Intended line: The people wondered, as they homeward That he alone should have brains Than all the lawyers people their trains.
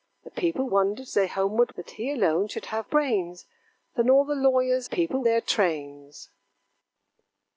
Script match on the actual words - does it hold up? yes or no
yes